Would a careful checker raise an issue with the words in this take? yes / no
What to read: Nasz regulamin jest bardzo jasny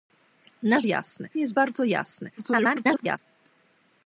yes